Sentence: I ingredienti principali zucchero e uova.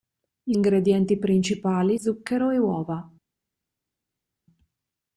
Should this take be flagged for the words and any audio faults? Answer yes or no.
no